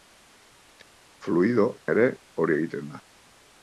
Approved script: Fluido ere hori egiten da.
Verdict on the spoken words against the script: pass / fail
pass